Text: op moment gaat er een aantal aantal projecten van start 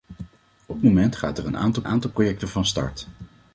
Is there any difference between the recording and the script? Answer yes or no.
no